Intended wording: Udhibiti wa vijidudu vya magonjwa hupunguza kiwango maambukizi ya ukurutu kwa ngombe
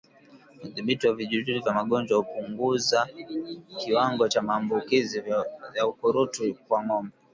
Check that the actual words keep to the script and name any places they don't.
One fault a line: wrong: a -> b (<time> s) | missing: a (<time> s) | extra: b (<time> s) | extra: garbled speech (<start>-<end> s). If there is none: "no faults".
extra: cha (4.3 s)